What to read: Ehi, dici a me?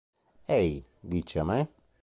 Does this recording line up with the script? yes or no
yes